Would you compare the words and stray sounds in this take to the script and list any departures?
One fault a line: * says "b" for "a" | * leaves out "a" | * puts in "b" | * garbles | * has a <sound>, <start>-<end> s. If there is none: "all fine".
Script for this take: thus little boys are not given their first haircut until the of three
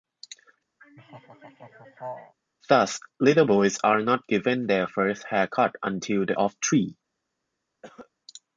* has a laugh, 0.8-2.3 s
* has a cough, 7.8-8.1 s